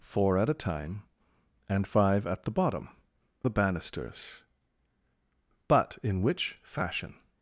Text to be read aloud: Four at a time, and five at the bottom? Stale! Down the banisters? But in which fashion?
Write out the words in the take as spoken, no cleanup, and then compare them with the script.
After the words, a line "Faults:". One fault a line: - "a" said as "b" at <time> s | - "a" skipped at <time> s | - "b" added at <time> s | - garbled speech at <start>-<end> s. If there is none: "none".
Four at a time, and five at the bottom? The banisters? But in which fashion?
Faults:
- "Stale Down" skipped at 2.9 s